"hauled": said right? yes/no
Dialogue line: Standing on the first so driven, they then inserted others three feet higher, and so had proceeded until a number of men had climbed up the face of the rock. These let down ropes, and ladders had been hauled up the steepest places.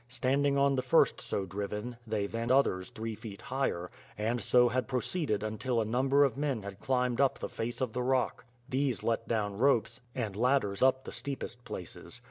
no